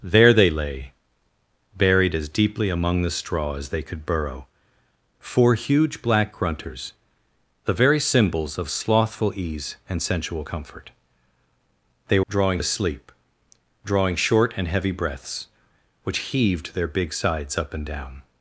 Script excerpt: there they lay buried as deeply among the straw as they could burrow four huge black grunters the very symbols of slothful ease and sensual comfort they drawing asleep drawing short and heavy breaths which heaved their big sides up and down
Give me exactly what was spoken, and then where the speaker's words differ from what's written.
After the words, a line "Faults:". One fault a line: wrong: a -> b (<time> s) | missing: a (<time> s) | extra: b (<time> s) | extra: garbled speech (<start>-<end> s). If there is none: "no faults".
there they lay buried as deeply among the straw as they could burrow four huge black grunters the very symbols of slothful ease and sensual comfort they drawing asleep drawing short and heavy breaths which heaved their big sides up and down
Faults:
no faults